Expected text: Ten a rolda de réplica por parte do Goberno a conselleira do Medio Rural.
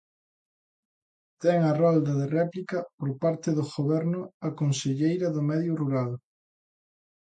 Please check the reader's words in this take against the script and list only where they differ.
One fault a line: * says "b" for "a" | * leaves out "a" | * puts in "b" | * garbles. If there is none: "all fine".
all fine